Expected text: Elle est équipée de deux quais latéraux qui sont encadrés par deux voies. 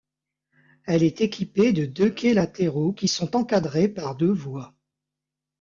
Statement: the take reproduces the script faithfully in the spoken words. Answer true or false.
true